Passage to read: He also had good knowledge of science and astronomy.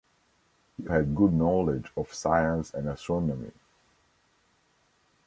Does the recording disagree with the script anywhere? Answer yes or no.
yes